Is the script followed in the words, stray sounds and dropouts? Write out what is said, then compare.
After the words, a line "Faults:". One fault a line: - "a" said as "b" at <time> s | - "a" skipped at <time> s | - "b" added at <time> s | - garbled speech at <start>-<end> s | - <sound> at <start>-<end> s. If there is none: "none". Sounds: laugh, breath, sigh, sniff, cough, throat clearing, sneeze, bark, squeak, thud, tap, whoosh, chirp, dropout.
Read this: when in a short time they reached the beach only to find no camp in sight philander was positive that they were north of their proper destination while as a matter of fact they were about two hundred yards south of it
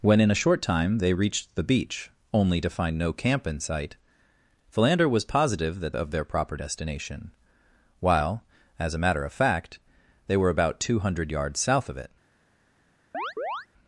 when in a short time they reached the beach only to find no camp in sight philander was positive that of their proper destination while as a matter of fact they were about two hundred yards south of it
Faults:
- "they were north" skipped at 6.0 s
- chirp at 13.1-13.7 s